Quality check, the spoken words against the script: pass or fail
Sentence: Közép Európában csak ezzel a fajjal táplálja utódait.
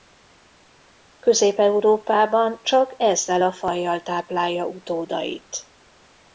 pass